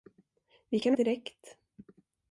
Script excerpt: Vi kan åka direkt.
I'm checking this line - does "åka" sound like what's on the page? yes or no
no